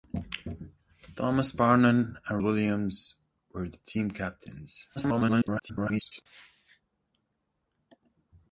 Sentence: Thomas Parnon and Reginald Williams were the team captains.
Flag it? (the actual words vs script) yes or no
yes